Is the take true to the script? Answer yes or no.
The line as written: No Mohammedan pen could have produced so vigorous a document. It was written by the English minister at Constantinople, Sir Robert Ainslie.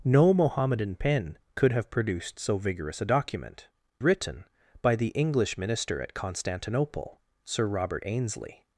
no